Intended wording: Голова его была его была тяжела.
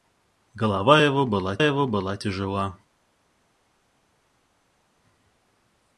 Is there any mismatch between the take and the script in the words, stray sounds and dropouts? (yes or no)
no